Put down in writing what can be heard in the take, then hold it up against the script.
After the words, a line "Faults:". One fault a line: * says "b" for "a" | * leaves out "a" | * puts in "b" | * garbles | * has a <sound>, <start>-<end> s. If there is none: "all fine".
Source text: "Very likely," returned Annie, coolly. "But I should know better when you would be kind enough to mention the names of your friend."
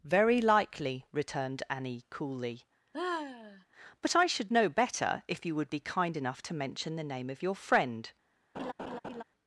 "Very likely," returned Annie, coolly. "But I should know better if you would be kind enough to mention the name of your friend."
Faults:
* has a sigh, 2.9-3.6 s
* says "if" for "when"
* says "name" for "names"
* has a laugh, 8.5-9.2 s